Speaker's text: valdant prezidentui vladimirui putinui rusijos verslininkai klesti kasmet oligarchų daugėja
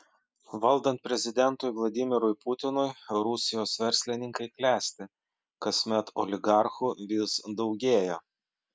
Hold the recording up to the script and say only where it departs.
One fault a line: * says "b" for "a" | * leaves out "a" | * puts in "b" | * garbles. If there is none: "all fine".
* puts in "vis"